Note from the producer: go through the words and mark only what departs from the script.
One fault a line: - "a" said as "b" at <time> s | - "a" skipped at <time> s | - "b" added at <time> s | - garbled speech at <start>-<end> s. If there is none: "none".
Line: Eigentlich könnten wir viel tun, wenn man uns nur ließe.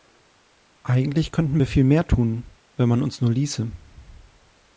- "mehr" added at 1.8 s